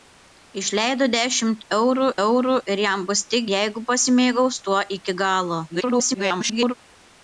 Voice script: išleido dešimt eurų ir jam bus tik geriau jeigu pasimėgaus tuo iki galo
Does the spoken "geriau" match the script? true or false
false